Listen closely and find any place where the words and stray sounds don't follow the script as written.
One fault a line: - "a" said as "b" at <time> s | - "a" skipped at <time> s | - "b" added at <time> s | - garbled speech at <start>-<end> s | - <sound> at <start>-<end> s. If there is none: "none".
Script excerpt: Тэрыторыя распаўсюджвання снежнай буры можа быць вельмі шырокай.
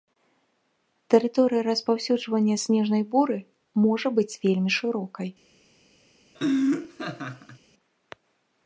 - laugh at 6.3-7.6 s